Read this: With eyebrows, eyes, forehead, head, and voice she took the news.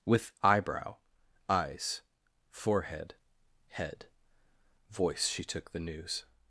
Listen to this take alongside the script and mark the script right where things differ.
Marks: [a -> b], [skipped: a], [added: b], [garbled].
With [eyebrows, -> eyebrow] eyes, forehead, head, [skipped: and] voice she took the news.